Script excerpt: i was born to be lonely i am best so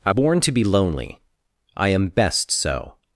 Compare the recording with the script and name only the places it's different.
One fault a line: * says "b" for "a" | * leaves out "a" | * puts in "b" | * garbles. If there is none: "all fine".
* leaves out "was"